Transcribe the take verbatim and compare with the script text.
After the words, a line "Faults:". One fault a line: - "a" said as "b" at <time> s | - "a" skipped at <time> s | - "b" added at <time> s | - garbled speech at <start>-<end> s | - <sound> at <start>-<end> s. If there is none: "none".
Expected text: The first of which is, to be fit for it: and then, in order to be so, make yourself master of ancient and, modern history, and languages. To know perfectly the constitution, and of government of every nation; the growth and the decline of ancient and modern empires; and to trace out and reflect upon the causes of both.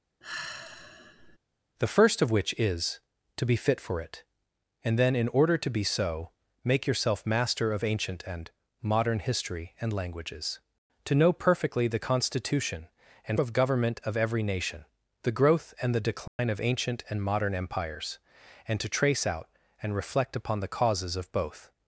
The first of which is, to be fit for it: and then, in order to be so, make yourself master of ancient and, modern history, and languages. To know perfectly the constitution, and of government of every nation; the growth and the decline of ancient and modern empires; and to trace out and reflect upon the causes of both.
Faults:
- sigh at 0.2-1.4 s
- dropout at 16.3-16.4 s